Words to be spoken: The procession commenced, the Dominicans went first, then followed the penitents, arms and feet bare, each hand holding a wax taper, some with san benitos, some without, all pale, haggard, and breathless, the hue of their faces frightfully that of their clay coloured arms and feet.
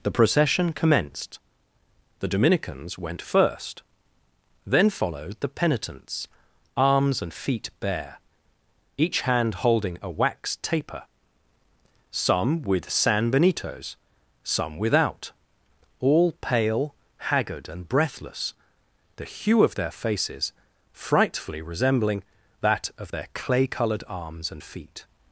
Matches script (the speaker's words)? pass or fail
fail